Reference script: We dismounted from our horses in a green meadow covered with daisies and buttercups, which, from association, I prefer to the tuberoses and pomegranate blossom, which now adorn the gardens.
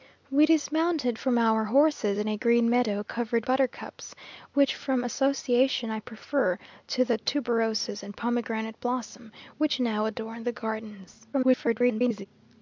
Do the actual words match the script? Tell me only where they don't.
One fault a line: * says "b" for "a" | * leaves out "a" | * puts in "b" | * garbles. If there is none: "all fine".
* leaves out "with daisies and"
* garbles